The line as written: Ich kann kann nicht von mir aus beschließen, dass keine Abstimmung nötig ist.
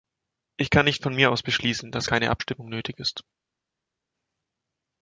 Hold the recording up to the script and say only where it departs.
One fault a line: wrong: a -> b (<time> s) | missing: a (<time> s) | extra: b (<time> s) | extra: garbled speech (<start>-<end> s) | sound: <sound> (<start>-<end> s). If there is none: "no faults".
missing: kann (0.8 s)